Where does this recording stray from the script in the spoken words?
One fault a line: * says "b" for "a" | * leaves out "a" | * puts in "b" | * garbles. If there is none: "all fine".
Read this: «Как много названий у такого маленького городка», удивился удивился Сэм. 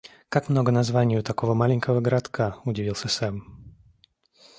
* leaves out "удивился"